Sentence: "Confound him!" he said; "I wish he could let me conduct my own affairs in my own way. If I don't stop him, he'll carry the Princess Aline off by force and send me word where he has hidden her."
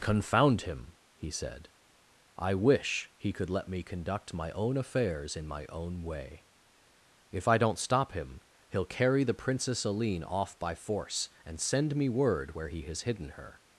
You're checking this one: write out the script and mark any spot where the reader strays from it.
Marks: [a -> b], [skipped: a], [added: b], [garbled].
"Confound him!" he said; "I wish he could let me conduct my own affairs in my own way. If I don't stop him, he'll carry the Princess Aline off by force and send me word where he has hidden her."